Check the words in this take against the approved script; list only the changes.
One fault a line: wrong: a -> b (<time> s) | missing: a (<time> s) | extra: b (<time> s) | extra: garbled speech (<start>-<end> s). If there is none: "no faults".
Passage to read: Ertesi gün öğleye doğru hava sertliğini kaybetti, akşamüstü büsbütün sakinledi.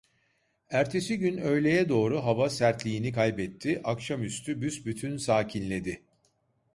no faults